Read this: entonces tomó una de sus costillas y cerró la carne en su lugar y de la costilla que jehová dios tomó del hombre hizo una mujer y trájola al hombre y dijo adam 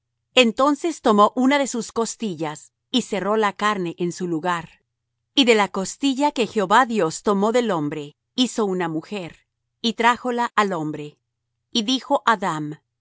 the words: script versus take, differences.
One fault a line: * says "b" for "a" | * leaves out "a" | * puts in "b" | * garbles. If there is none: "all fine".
all fine